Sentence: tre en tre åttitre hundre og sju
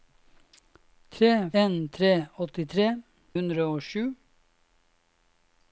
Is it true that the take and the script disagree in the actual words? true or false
false